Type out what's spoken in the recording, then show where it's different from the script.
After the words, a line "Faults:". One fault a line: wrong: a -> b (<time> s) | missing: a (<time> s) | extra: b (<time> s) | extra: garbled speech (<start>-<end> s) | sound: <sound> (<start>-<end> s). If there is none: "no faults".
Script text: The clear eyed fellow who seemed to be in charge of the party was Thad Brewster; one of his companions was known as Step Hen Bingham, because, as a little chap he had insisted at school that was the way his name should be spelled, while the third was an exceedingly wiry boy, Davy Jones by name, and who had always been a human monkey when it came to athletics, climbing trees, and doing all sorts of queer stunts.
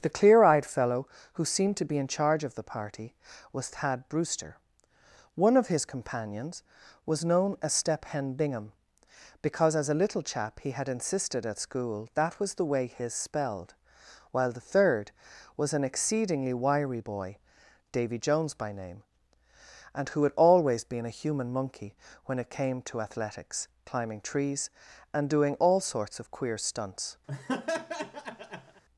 The clear eyed fellow who seemed to be in charge of the party was Thad Brewster; one of his companions was known as Step Hen Bingham, because, as a little chap he had insisted at school that was the way his spelled, while the third was an exceedingly wiry boy, Davy Jones by name, and who had always been a human monkey when it came to athletics, climbing trees, and doing all sorts of queer stunts.
Faults:
missing: name should be (13.1 s)
sound: laugh (27.3-28.8 s)